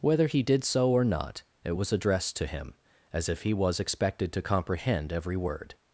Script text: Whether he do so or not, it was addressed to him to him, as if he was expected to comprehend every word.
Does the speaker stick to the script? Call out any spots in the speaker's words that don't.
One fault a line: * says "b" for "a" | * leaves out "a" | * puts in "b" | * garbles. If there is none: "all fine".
* says "did" for "do"
* leaves out "to him"